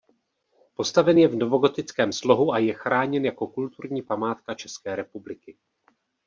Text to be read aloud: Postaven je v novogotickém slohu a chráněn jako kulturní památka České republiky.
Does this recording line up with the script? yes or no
no